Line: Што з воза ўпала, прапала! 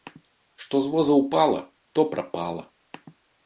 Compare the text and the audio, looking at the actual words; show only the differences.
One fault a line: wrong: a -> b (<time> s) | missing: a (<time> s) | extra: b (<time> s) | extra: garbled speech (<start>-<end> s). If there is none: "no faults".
extra: то (1.9 s)